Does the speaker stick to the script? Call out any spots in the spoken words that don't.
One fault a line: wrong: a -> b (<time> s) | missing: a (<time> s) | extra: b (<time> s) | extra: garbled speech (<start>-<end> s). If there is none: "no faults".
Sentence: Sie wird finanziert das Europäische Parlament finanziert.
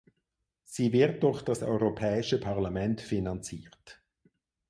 wrong: finanziert -> durch (1.2 s)